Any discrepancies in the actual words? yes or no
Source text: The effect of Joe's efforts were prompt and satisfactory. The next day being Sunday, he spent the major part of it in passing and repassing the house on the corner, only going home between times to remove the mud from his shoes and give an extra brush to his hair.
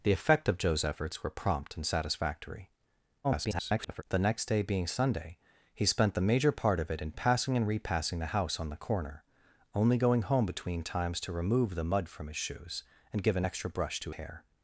yes